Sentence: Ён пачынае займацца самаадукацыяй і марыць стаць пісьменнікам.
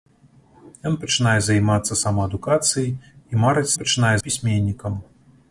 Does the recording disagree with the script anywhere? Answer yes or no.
yes